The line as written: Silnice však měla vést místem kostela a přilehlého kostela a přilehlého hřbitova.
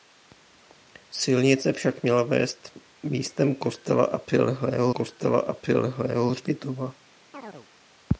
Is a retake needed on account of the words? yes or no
no